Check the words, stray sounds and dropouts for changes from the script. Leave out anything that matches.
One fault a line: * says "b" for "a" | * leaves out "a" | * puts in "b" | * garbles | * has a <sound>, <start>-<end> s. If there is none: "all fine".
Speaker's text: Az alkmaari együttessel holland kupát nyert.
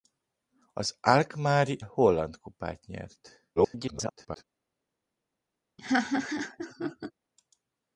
* leaves out "együttessel"
* garbles
* has a laugh, 5.8-7.1 s